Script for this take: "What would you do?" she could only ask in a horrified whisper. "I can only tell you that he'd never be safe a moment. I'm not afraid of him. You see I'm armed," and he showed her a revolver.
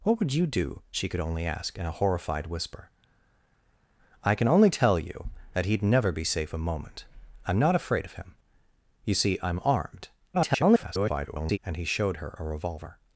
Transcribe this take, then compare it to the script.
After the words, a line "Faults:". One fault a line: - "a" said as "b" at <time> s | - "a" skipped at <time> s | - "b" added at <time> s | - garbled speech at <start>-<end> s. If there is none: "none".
"What would you do?" she could only ask in a horrified whisper. "I can only tell you that he'd never be safe a moment. I'm not afraid of him. You see I'm armed," [garbled] and he showed her a revolver.
Faults:
- garbled speech at 10.3-11.6 s